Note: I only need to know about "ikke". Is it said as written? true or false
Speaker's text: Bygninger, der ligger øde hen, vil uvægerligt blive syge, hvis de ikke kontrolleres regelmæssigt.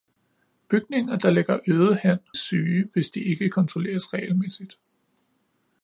true